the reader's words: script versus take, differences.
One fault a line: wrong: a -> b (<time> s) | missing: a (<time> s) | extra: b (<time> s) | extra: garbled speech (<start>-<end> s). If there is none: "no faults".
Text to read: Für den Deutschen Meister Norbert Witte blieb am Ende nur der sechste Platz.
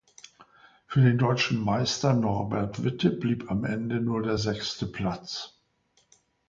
no faults